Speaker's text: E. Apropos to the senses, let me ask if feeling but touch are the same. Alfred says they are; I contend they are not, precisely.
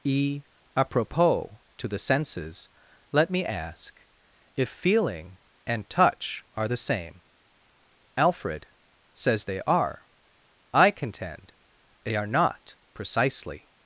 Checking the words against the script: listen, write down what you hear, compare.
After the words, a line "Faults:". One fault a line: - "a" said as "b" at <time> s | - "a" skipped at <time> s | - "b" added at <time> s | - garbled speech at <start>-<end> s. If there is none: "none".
E. Apropos to the senses, let me ask if feeling and touch are the same. Alfred says they are; I contend they are not, precisely.
Faults:
- "but" said as "and" at 5.7 s